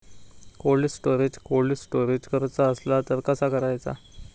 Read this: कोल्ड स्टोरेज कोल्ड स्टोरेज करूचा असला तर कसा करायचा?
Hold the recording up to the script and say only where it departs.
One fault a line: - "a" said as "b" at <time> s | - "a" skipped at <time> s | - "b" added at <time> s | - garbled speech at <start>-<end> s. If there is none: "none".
none